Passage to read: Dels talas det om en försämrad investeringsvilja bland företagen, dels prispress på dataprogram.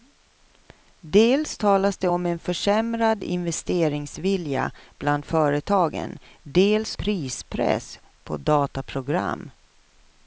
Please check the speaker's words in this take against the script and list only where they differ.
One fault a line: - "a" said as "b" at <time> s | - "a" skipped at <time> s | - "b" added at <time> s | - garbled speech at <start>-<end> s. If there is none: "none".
none